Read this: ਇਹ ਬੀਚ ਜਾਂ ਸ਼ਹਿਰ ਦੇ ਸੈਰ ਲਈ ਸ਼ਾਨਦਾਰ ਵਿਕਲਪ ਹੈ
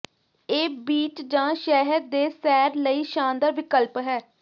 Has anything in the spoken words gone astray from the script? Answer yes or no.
no